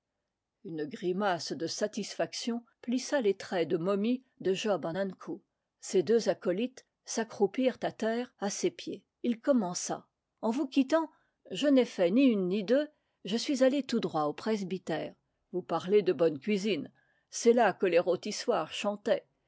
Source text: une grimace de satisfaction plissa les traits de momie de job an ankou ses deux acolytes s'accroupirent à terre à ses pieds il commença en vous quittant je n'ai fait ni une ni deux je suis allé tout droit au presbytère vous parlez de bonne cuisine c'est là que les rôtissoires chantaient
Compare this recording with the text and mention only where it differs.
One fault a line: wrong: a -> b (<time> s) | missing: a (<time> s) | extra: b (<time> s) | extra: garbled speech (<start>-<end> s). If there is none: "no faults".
no faults